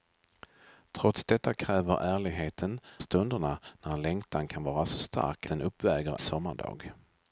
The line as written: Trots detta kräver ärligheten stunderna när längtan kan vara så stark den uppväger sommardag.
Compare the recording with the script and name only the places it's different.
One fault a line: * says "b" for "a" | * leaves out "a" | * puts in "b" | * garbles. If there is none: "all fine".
all fine